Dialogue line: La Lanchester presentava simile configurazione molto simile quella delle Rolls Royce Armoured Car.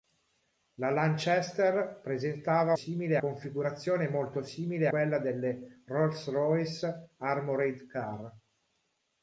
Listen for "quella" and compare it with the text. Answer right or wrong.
right